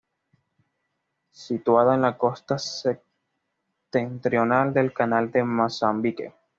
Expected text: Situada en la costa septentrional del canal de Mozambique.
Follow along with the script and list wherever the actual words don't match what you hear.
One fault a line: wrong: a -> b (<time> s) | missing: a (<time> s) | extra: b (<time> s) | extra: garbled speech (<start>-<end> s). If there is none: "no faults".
no faults